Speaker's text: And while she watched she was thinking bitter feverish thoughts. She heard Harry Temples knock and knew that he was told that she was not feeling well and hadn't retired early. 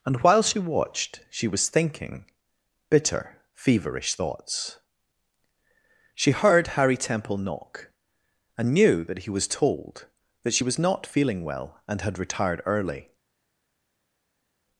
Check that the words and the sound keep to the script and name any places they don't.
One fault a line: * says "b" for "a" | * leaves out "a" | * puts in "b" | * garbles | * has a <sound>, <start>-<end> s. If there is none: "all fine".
* says "Temple" for "Temples"
* says "had" for "hadn't"